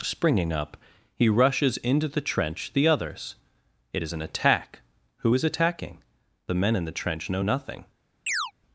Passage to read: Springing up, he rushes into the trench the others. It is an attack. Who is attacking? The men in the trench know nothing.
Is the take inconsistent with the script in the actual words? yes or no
no